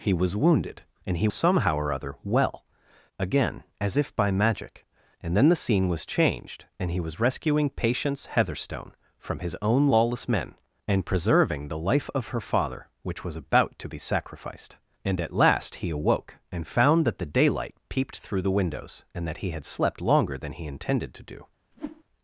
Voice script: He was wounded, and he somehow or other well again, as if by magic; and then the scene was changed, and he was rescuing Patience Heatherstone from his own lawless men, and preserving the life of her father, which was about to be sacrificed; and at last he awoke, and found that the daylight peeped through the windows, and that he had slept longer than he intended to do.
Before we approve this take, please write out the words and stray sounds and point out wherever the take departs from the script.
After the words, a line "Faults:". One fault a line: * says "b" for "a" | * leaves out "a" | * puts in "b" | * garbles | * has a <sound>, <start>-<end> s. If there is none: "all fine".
He was wounded, and he somehow or other well again, as if by magic; and then the scene was changed, and he was rescuing Patience Heatherstone from his own lawless men, and preserving the life of her father, which was about to be sacrificed; and at last he awoke, and found that the daylight peeped through the windows, and that he had slept longer than he intended to do.
Faults:
* has a whoosh, 21.7-22.0 s